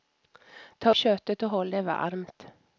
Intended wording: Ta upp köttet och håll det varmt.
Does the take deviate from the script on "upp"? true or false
true